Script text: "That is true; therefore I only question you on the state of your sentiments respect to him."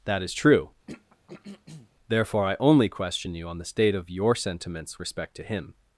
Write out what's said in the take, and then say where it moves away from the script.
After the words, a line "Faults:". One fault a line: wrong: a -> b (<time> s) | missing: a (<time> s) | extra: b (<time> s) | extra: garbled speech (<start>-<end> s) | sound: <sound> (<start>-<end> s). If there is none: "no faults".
"That is true; therefore I only question you on the state of your sentiments respect to him."
Faults:
sound: throat clearing (0.9-1.9 s)